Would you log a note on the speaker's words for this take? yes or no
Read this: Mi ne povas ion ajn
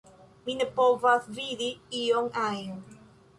yes